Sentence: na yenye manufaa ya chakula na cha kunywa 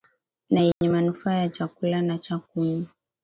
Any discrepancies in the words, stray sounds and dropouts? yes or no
yes